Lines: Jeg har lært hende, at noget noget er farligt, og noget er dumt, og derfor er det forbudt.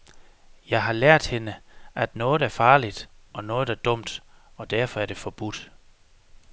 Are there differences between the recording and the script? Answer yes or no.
yes